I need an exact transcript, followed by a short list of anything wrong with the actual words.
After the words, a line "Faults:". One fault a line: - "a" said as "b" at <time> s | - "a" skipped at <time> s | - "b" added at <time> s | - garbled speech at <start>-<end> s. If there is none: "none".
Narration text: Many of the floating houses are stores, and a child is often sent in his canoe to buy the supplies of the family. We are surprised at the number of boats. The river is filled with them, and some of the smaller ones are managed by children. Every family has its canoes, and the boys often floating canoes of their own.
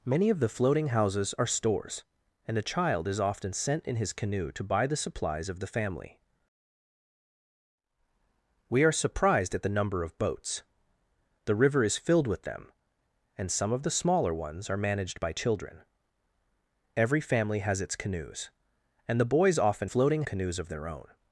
Many of the floating houses are stores, and a child is often sent in his canoe to buy the supplies of the family. We are surprised at the number of boats. The river is filled with them, and some of the smaller ones are managed by children. Every family has its canoes, and the boys often floating canoes of their own.
Faults:
none